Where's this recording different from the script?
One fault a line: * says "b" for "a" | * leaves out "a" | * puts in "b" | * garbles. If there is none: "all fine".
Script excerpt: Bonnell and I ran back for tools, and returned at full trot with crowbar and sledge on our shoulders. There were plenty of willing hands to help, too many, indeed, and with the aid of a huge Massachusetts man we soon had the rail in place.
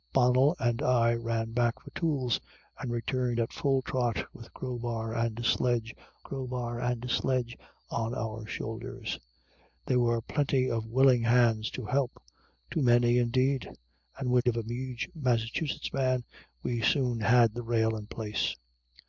* puts in "crowbar and sledge"
* leaves out "the aid"